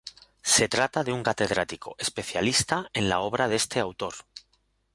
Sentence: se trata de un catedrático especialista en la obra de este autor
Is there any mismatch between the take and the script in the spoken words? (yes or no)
no